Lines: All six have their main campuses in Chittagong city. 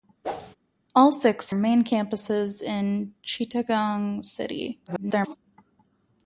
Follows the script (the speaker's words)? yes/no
no